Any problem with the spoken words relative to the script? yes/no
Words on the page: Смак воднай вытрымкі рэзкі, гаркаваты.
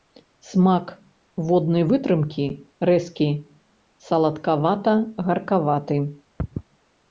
yes